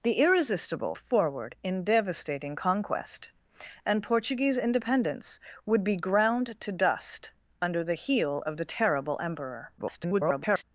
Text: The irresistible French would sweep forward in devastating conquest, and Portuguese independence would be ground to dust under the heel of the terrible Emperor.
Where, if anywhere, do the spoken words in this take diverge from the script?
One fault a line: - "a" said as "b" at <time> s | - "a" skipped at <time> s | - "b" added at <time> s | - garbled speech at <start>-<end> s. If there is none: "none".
- "French would sweep" skipped at 0.9 s
- garbled speech at 9.8-10.6 s